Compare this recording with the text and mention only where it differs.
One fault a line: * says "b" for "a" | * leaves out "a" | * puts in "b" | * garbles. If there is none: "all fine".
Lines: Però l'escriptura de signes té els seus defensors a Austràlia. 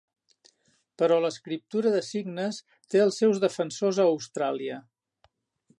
all fine